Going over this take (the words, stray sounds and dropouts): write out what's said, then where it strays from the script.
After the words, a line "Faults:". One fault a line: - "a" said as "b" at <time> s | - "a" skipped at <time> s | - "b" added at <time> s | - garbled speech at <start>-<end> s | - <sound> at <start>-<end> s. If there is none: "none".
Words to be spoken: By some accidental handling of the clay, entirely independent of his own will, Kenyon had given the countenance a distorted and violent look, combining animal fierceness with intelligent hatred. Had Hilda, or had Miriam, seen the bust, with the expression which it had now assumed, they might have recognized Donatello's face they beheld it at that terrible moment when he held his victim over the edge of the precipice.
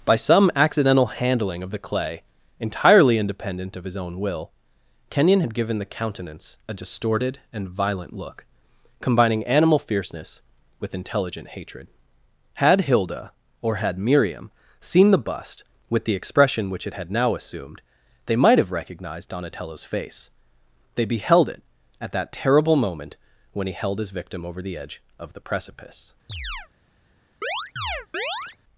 By some accidental handling of the clay, entirely independent of his own will, Kenyon had given the countenance a distorted and violent look, combining animal fierceness with intelligent hatred. Had Hilda, or had Miriam, seen the bust, with the expression which it had now assumed, they might have recognized Donatello's face they beheld it at that terrible moment when he held his victim over the edge of the precipice.
Faults:
- chirp at 26.3-26.7 s
- chirp at 27.4-28.6 s